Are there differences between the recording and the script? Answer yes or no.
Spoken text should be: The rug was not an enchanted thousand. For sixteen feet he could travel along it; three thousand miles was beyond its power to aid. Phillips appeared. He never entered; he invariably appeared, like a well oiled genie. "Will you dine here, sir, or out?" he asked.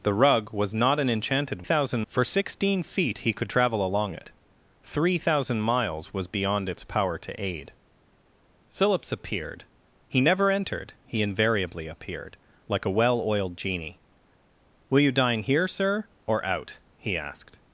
no